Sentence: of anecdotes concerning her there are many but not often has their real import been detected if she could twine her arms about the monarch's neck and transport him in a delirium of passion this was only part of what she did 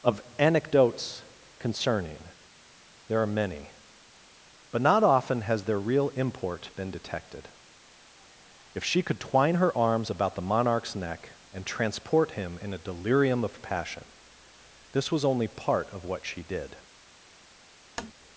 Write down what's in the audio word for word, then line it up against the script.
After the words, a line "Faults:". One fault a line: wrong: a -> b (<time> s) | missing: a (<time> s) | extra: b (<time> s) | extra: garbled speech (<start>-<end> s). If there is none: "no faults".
of anecdotes concerning there are many but not often has their real import been detected if she could twine her arms about the monarch's neck and transport him in a delirium of passion this was only part of what she did
Faults:
missing: her (2.2 s)